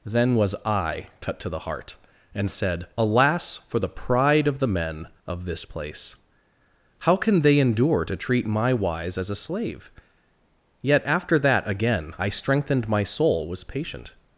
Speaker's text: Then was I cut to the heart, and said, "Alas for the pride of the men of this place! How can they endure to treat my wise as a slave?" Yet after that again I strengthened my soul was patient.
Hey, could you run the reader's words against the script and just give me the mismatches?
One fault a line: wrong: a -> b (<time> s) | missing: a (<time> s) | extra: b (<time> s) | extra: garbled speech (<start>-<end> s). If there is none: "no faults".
no faults